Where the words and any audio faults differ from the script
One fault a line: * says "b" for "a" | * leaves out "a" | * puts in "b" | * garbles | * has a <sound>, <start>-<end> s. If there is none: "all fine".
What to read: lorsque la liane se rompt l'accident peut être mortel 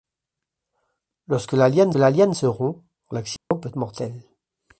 * puts in "la liane"
* has a dropout, 3.4-3.5 s
* leaves out "être"